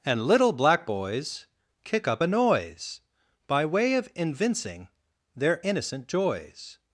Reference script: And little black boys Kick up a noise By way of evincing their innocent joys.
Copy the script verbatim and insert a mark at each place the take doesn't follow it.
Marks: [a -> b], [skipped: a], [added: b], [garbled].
And little black boys Kick up a noise By way of evincing their innocent joys.